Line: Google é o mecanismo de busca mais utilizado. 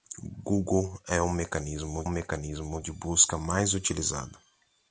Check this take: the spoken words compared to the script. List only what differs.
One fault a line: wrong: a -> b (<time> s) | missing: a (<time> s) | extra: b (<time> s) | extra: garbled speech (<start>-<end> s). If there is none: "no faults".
extra: mecanismo (2.1 s)